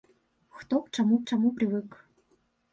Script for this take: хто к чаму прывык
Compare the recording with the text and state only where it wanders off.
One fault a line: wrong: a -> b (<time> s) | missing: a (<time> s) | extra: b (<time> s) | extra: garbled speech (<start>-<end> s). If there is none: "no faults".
extra: чаму (1.2 s)